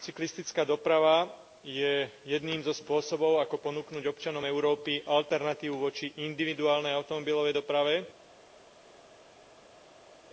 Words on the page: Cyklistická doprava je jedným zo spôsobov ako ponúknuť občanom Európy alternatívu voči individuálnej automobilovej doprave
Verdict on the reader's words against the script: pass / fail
pass